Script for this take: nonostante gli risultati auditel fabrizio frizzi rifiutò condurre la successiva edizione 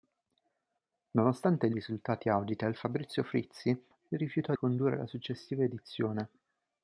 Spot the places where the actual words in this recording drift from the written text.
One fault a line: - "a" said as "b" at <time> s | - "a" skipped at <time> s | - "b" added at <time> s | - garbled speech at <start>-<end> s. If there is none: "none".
none